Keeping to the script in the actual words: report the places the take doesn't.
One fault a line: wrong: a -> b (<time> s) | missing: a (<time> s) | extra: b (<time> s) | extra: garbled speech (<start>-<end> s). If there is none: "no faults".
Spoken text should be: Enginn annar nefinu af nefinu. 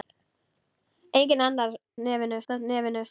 no faults